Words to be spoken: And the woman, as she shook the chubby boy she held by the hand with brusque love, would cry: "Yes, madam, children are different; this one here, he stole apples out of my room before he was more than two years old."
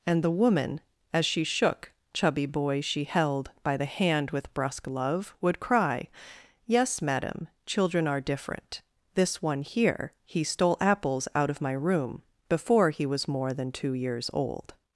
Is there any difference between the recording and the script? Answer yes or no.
yes